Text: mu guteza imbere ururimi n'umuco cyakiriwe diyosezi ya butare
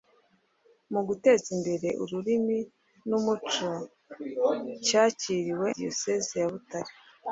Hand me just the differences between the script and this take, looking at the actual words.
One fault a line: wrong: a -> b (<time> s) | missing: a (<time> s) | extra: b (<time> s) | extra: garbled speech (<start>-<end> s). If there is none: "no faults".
no faults